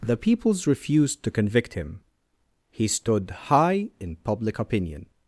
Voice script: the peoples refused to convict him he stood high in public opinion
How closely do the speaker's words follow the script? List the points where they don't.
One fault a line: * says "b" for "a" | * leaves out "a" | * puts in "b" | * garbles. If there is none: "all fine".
all fine